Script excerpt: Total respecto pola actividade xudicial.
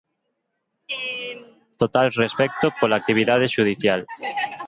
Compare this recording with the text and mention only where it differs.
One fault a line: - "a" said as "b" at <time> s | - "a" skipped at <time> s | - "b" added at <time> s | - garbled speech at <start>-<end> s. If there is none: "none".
none